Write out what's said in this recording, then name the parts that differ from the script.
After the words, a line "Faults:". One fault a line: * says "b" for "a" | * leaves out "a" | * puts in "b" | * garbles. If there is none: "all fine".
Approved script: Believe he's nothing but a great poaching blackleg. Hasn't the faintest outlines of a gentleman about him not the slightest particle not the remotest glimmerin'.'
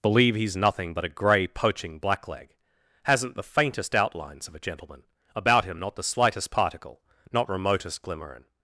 Believe he's nothing but a grey poaching blackleg. Hasn't the faintest outlines of a gentleman about him not the slightest particle not remotest glimmerin'.'
Faults:
* says "grey" for "great"
* leaves out "the"